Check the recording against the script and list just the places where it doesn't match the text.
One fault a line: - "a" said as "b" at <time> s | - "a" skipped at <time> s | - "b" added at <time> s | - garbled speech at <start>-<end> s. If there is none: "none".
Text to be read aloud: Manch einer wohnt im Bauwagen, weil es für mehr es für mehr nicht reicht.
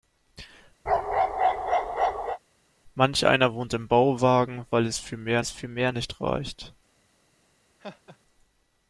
none